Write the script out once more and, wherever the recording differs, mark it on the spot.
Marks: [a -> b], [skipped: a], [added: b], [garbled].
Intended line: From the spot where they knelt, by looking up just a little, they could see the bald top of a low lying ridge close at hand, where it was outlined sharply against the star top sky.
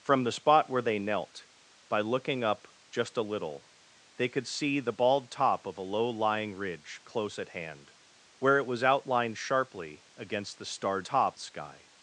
From the spot where they knelt, by looking up just a little, they could see the bald top of a low lying ridge close at hand, where it was outlined sharply against the star top sky.